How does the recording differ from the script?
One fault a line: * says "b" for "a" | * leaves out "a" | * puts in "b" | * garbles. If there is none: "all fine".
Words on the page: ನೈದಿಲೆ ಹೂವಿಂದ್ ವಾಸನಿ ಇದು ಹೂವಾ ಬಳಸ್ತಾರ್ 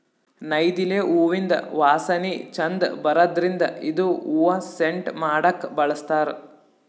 * puts in "ಛಂದ್ ಬರದ್ರಿನ್ದ್"
* puts in "ಸೆಂಟ್ ಮಾಡಕ್ಕ್"